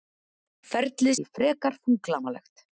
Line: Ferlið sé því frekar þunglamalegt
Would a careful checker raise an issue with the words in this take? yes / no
yes